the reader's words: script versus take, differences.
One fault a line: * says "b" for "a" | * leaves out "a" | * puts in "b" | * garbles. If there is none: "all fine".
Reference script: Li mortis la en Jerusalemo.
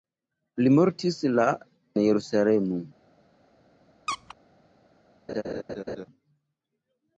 * leaves out "en"